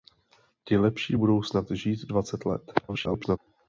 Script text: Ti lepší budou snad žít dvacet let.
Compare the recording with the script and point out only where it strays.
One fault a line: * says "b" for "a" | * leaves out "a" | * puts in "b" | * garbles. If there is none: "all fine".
* garbles